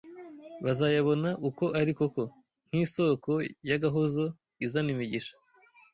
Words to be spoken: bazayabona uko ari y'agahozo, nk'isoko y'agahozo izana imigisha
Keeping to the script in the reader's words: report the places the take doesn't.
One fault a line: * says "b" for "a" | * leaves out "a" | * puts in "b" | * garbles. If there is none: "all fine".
* says "koko" for "y'agahozo"